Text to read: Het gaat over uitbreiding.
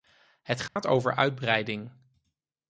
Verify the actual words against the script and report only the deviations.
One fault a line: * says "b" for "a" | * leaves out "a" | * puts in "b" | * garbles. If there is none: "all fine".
all fine